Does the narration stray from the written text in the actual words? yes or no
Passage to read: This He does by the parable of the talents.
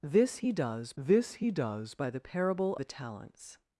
yes